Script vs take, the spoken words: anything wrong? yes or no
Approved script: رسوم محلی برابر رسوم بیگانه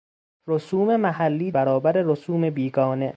no